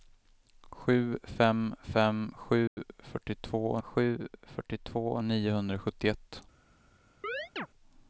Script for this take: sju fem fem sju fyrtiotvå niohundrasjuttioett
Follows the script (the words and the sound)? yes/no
no